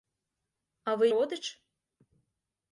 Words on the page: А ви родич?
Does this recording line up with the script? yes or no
yes